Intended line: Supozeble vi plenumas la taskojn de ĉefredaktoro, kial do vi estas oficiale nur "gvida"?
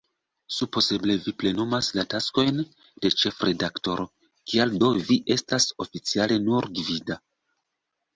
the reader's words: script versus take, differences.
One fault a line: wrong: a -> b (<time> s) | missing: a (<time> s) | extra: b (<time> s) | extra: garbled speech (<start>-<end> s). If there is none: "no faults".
no faults